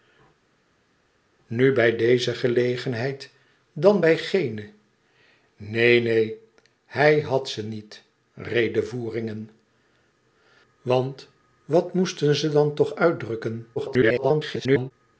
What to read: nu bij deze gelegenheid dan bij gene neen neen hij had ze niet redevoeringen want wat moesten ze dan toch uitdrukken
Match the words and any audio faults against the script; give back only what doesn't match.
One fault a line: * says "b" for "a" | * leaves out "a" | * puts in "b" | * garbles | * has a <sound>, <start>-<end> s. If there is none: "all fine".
* garbles